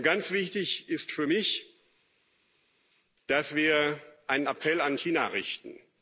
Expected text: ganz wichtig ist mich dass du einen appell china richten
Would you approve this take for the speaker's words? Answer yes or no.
no